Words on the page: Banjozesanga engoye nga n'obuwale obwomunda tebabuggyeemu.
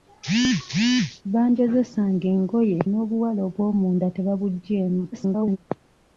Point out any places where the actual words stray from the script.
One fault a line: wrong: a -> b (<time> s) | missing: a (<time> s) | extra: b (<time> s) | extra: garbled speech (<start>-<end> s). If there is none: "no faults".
missing: nga (2.8 s)
extra: garbled speech (5.1-5.6 s)